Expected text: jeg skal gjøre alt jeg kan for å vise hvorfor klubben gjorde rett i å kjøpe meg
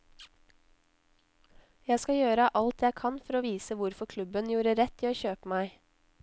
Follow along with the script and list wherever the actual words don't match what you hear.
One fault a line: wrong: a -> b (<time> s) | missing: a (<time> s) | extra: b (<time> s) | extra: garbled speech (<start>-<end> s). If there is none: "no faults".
no faults